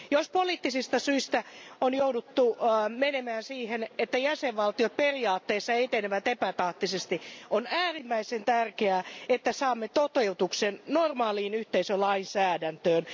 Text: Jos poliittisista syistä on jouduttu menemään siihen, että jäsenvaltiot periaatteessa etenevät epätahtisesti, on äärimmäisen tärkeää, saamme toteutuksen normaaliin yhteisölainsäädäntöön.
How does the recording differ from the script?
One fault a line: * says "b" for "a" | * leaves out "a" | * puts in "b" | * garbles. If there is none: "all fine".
* puts in "että"